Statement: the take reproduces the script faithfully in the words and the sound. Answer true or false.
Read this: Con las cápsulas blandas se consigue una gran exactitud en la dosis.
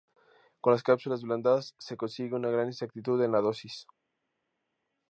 true